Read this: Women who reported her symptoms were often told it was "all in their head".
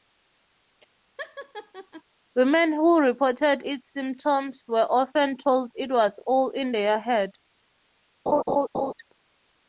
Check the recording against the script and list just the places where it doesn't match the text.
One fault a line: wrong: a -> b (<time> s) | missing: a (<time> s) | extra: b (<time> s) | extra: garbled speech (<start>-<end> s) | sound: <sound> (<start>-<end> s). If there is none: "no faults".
sound: laugh (1.2-2.0 s)
wrong: her -> its (3.6 s)
sound: laugh (8.3-8.9 s)